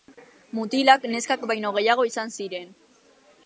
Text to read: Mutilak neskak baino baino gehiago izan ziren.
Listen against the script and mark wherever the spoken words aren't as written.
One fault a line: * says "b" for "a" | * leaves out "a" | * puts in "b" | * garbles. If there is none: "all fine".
* leaves out "baino"